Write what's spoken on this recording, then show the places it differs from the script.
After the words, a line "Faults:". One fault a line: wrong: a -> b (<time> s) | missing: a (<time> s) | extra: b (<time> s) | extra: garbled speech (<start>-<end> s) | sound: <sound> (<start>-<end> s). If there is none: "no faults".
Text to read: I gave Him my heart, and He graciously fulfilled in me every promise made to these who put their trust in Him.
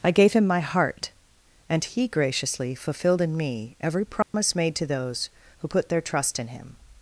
I gave Him my heart, and He graciously fulfilled in me every promise made to those who put their trust in Him.
Faults:
sound: dropout (4.2-4.3 s)
wrong: these -> those (4.8 s)